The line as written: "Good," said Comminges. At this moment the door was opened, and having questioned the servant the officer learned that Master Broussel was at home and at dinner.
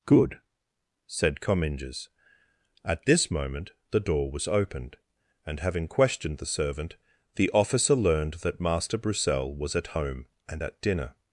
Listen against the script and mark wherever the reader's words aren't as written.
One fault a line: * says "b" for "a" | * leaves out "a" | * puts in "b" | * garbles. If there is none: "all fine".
all fine